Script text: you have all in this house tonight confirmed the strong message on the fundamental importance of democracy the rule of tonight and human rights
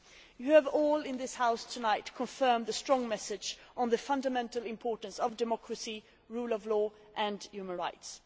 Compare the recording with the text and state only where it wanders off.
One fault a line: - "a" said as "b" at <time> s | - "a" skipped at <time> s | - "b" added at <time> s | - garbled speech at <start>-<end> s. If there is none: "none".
- "tonight" said as "law" at 6.7 s